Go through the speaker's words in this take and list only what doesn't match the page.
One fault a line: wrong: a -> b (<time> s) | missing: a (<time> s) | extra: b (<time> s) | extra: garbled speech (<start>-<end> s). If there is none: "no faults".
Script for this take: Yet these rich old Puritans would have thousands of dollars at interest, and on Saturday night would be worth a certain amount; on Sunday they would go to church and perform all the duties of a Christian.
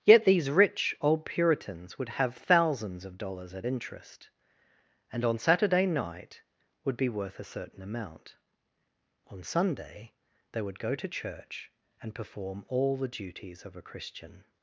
no faults